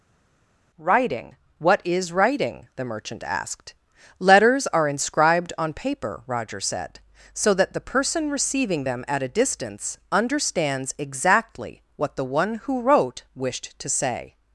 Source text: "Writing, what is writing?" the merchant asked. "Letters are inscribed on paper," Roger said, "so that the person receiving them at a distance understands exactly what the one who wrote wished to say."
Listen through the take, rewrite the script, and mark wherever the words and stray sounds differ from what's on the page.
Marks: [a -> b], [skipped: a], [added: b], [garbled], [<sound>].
"Writing, what is writing?" the merchant asked. "Letters are inscribed on paper," Roger said, "so that the person receiving them at a distance understands exactly what the one who wrote wished to say."